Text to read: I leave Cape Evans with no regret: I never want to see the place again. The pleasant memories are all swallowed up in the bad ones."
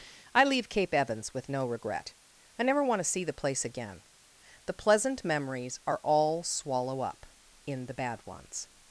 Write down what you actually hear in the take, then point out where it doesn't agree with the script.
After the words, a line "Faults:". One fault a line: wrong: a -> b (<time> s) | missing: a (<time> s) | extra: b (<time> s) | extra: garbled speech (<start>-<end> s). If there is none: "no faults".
I leave Cape Evans with no regret: I never want to see the place again. The pleasant memories are all swallow up in the bad ones."
Faults:
wrong: swallowed -> swallow (6.4 s)